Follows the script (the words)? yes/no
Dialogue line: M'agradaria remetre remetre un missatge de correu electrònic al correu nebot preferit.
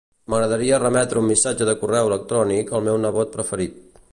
no